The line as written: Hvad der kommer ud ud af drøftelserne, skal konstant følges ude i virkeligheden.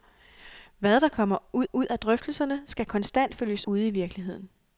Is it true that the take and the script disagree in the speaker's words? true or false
false